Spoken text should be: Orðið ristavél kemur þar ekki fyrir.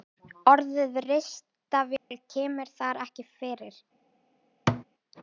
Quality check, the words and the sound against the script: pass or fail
fail